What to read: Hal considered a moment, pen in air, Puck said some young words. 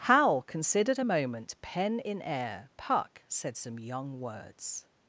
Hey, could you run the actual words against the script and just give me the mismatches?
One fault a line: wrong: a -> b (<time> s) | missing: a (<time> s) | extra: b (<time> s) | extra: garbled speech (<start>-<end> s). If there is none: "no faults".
no faults